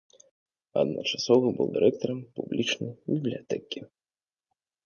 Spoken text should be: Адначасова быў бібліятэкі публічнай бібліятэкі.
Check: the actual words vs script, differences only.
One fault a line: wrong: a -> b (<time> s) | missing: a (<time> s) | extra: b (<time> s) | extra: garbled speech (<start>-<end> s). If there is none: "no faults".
wrong: бібліятэкі -> дырэктарам (1.7 s)